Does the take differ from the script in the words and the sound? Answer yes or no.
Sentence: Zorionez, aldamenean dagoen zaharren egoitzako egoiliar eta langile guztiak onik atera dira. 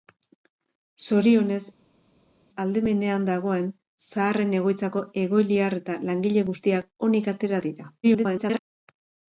yes